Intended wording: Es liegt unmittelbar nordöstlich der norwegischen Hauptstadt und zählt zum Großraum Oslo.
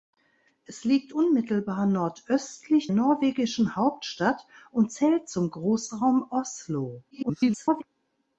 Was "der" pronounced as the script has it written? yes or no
no